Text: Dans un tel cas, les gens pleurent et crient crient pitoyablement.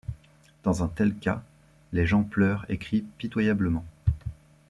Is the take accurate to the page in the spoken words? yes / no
no